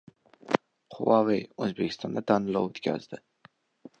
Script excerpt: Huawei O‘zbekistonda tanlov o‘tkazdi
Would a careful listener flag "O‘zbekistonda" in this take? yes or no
no